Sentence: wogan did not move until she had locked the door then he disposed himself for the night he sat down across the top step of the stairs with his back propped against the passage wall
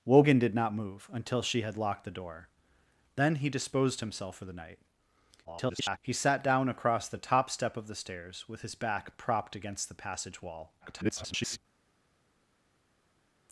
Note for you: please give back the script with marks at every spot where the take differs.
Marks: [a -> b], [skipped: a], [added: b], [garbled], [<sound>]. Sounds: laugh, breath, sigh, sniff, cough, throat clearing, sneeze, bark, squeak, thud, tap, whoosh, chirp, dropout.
wogan did not move until she had locked the door then he disposed himself for the night [garbled] he sat down across the top step of the stairs with his back propped against the passage wall [garbled]